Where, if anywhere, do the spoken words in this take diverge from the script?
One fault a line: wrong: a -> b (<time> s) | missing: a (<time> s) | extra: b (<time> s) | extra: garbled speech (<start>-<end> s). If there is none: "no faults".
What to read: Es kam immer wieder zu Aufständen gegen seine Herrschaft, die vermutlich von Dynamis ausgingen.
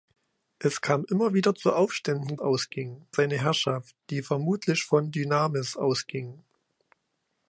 wrong: gegen -> ausgingen (2.4 s)